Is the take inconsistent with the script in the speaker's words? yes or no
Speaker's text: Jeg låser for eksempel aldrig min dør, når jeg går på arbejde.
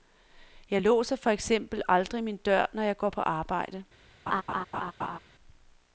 no